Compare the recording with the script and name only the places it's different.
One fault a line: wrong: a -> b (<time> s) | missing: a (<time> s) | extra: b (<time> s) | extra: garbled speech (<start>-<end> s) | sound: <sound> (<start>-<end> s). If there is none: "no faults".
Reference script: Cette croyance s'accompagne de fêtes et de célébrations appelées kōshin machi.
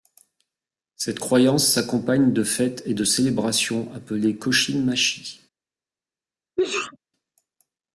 sound: sneeze (6.6-7.0 s)